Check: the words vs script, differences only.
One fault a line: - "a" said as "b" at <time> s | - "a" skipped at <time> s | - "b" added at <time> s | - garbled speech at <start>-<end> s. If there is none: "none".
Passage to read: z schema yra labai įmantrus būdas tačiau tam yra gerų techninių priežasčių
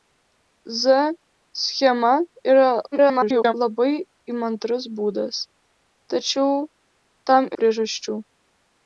- garbled speech at 2.9-3.5 s
- "yra gerų techninių" skipped at 7.5 s